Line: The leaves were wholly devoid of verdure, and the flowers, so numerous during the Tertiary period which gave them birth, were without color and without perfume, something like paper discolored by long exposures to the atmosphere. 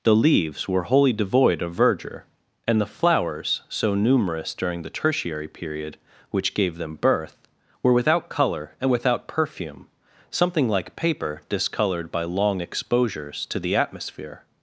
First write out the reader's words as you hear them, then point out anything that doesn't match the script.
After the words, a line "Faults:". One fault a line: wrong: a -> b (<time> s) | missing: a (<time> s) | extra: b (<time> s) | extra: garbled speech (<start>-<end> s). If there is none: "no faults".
The leaves were wholly devoid of verdure, and the flowers, so numerous during the Tertiary period which gave them birth, were without color and without perfume, something like paper discolored by long exposures to the atmosphere.
Faults:
no faults